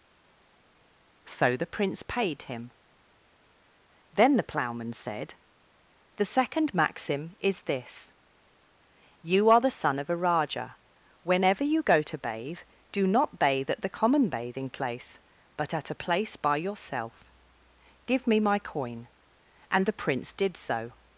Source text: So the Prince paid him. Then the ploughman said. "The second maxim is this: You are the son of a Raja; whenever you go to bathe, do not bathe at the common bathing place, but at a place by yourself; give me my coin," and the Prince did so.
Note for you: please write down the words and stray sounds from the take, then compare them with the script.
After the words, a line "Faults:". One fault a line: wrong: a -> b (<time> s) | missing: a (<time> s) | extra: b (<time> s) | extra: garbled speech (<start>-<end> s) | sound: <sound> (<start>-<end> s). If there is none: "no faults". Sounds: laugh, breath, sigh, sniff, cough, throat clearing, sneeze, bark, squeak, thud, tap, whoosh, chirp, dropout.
So the Prince paid him. Then the ploughman said. "The second maxim is this: You are the son of a Raja; whenever you go to bathe, do not bathe at the common bathing place, but at a place by yourself; give me my coin," and the Prince did so.
Faults:
no faults